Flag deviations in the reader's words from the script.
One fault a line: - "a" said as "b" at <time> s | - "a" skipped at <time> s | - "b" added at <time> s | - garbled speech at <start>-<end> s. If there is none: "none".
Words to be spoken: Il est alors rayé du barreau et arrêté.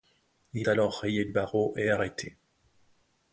- "est" skipped at 0.7 s
- "du" skipped at 1.3 s